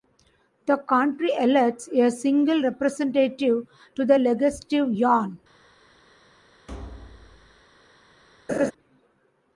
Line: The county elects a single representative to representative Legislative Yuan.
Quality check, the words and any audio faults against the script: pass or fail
fail